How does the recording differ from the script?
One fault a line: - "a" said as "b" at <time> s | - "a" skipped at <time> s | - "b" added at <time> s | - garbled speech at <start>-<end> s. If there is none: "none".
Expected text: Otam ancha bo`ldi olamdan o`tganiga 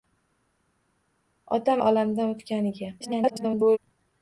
- "ancha bo`ldi" skipped at 1.8 s
- garbled speech at 3.0-3.8 s